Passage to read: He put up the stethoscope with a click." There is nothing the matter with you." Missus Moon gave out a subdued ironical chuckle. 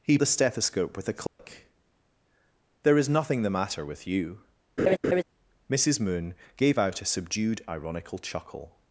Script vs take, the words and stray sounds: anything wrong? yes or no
yes